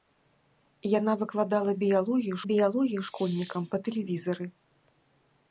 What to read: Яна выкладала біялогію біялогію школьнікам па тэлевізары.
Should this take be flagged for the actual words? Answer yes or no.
no